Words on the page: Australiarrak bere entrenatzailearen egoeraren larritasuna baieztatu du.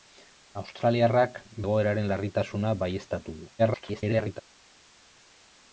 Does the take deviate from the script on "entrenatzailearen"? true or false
true